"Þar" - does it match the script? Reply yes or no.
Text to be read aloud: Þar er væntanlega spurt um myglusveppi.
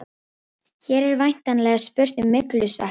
no